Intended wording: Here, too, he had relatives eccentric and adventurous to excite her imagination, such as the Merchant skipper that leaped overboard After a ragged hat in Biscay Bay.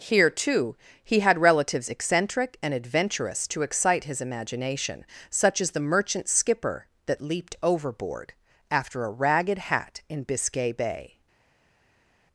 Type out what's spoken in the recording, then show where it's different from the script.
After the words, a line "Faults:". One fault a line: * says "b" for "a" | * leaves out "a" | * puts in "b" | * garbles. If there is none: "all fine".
Here, too, he had relatives eccentric and adventurous to excite his imagination, such as the Merchant skipper that leaped overboard After a ragged hat in Biscay Bay.
Faults:
* says "his" for "her"